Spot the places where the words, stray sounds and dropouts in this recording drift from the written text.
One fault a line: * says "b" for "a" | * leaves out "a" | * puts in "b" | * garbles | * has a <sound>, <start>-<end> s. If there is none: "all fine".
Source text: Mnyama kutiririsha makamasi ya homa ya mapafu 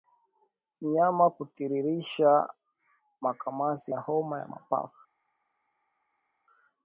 all fine